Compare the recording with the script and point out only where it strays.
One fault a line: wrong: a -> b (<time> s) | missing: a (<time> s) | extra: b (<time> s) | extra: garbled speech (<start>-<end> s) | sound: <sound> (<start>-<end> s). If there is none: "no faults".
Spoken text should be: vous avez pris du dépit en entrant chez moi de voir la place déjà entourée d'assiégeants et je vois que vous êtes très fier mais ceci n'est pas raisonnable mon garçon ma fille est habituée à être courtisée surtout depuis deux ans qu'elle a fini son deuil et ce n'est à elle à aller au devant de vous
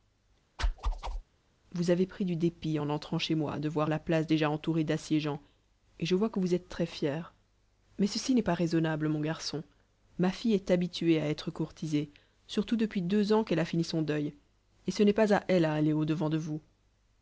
sound: whoosh (0.6-1.2 s)
extra: pas (15.1 s)